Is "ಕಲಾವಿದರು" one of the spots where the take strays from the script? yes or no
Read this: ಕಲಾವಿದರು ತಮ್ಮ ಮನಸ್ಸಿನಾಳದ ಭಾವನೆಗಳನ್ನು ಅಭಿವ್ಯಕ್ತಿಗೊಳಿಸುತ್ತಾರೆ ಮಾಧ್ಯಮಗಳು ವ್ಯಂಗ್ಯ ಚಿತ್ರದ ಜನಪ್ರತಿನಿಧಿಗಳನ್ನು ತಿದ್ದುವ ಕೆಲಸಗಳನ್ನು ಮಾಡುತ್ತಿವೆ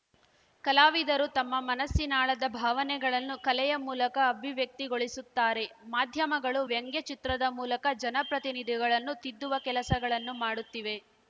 no